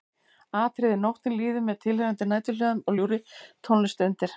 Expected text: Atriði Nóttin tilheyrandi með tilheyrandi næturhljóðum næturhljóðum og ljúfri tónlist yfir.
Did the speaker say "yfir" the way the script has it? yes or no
no